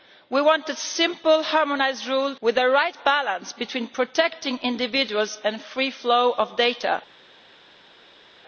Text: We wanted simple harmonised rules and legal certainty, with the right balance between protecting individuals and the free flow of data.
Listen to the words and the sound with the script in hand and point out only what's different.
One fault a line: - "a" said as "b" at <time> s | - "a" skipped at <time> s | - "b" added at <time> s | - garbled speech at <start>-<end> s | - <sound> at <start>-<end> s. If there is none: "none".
- "and legal certainty" skipped at 2.4 s